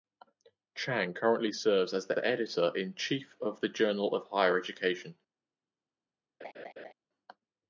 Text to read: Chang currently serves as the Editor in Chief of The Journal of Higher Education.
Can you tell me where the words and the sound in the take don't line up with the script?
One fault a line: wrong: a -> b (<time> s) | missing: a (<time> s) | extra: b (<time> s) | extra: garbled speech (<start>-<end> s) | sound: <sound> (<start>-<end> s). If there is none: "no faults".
extra: the (2.1 s)
sound: laugh (6.4-6.9 s)